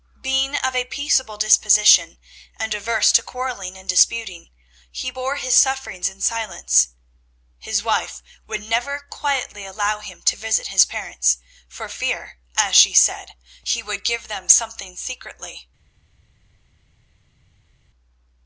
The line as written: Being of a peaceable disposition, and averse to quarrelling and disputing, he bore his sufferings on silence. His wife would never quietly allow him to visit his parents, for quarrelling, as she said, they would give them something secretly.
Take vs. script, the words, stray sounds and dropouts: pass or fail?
fail